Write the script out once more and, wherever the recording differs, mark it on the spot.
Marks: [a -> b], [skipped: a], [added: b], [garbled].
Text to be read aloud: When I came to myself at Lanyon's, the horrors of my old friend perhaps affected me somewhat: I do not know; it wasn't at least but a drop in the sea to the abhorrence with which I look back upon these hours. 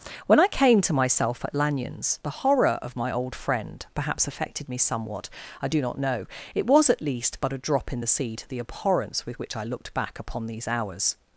When I came to myself at Lanyon's, the [horrors -> horror] of my old friend perhaps affected me somewhat: I do not know; it [wasn't -> was] at least but a drop in the sea to the abhorrence with which I [look -> looked] back upon these hours.